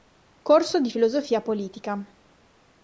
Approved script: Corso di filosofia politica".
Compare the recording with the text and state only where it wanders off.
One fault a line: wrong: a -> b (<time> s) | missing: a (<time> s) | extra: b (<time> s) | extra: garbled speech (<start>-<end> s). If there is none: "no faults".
no faults